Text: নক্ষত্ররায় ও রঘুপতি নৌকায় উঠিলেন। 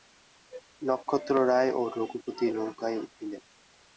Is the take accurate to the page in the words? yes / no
yes